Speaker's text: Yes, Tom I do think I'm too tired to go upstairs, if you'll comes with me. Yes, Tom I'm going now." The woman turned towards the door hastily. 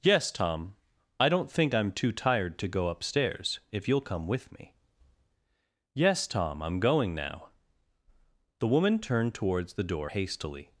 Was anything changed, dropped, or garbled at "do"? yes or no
yes